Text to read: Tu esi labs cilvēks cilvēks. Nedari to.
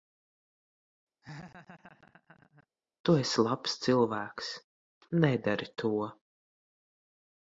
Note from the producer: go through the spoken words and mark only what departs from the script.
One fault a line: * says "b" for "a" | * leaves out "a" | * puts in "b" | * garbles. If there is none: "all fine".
* leaves out "cilvēks"